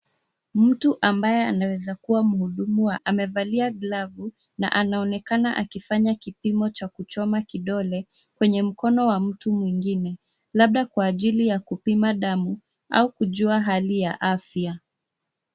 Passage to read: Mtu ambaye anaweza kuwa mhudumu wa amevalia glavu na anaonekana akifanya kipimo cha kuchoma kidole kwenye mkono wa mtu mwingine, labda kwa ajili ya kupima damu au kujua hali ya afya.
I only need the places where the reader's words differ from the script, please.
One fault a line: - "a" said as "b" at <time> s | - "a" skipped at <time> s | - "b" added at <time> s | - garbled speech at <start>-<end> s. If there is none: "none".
none